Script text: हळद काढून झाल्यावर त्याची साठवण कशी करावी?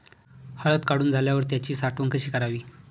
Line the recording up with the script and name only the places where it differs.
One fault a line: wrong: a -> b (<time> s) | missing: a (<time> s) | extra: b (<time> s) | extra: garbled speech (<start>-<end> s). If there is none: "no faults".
no faults